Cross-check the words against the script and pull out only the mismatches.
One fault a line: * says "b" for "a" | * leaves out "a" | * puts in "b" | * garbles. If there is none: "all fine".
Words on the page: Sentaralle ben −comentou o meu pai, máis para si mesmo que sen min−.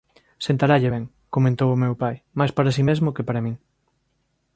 * says "para" for "sen"